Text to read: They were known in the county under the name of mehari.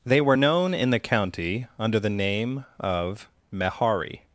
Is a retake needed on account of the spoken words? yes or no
no